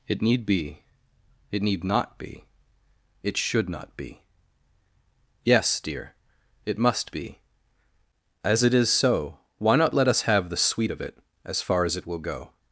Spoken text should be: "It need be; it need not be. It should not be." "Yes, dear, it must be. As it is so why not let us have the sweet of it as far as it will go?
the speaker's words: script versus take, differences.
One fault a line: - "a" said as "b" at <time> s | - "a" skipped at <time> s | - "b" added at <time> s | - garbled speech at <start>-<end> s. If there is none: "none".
none